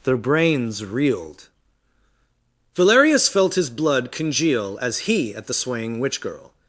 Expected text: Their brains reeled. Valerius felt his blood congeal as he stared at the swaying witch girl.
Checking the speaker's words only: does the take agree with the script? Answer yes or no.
no